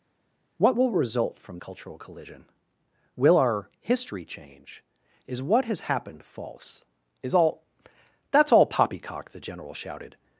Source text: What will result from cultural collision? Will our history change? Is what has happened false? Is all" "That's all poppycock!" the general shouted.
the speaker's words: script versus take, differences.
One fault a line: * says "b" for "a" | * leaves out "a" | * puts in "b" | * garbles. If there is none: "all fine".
all fine